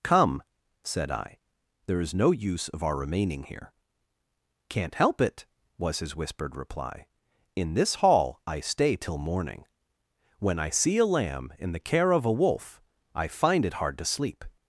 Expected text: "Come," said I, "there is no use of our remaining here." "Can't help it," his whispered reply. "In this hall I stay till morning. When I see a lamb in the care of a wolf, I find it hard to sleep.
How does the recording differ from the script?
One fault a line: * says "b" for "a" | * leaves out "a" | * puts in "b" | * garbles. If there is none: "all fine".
* puts in "was"